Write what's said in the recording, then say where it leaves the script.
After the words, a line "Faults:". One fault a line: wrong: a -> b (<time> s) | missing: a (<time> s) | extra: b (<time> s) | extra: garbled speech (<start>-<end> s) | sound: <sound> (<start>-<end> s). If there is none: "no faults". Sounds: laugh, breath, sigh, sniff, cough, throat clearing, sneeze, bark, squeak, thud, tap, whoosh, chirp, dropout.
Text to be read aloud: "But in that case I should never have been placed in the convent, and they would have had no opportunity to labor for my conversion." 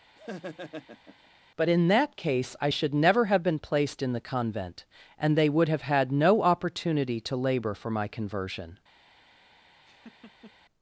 "But in that case I should never have been placed in the convent, and they would have had no opportunity to labor for my conversion."
Faults:
sound: laugh (0.2-1.3 s)
sound: laugh (9.8-10.5 s)